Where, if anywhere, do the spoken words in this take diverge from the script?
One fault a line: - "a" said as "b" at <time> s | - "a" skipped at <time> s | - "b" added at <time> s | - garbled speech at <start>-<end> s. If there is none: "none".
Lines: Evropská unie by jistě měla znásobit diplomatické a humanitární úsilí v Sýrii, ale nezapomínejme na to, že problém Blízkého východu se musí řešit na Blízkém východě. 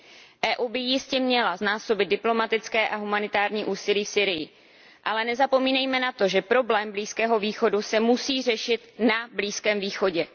none